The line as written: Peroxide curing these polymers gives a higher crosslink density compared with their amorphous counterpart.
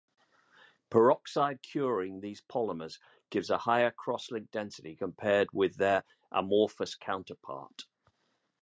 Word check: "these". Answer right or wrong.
right